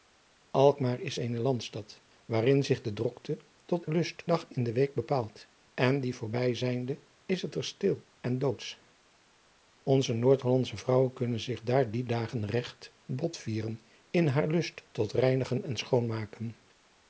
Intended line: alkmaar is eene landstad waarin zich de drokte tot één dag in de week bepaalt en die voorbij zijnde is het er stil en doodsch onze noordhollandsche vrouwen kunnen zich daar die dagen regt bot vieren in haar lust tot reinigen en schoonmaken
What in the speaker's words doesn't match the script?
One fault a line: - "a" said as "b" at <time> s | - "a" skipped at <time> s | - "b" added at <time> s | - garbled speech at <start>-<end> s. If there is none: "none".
- "één" said as "lust" at 3.9 s